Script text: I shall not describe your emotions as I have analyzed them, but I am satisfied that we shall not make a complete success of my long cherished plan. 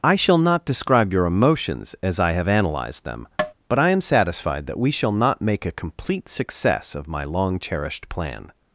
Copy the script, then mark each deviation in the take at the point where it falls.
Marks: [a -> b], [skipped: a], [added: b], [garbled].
I shall not describe your emotions as I have analyzed them, but I am satisfied that we shall not make a complete success of my long cherished plan.